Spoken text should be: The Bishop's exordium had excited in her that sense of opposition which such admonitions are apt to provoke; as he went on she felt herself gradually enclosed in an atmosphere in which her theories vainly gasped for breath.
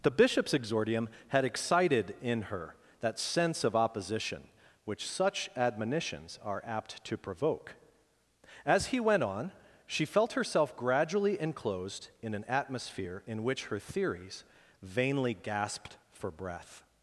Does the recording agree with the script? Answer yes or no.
yes